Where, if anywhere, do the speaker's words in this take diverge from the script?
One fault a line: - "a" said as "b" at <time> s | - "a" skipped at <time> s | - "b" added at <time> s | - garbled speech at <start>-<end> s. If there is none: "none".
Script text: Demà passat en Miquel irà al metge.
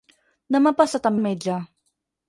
- "Miquel irà" skipped at 1.2 s